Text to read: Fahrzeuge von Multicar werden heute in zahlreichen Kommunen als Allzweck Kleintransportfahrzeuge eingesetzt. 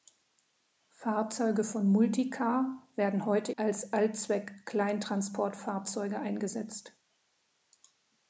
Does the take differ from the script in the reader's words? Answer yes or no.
yes